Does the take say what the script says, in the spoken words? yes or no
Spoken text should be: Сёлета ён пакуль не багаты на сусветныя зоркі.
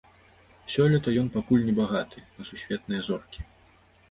yes